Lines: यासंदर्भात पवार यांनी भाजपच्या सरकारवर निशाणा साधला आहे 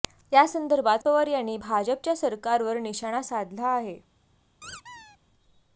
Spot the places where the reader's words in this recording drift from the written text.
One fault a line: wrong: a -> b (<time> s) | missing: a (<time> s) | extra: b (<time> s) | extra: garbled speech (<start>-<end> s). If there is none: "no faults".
no faults